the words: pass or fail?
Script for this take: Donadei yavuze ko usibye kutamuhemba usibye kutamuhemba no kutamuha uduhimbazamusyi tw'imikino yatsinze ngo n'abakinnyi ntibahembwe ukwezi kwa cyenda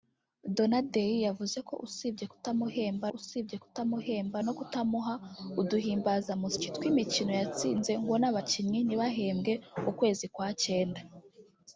pass